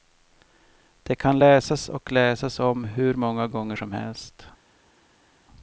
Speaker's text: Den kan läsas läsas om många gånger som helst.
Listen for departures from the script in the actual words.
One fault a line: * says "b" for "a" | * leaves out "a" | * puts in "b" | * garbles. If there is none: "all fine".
* says "Det" for "Den"
* puts in "och"
* puts in "hur"